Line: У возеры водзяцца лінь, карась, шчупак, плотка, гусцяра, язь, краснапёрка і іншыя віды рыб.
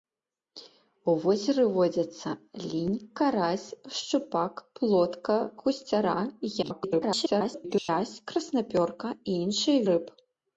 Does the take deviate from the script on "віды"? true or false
true